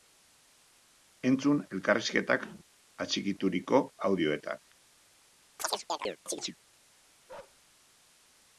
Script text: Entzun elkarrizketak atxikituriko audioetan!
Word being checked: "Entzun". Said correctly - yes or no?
yes